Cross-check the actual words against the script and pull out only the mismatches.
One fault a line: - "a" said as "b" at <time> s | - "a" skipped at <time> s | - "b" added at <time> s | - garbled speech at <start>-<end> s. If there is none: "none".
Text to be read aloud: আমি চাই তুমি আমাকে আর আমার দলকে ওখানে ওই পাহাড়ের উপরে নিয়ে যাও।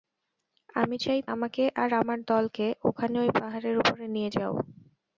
- "তুমি" skipped at 1.2 s